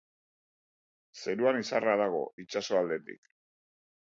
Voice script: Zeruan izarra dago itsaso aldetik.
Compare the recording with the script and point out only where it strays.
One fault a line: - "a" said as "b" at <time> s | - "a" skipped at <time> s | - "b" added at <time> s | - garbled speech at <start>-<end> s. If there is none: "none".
none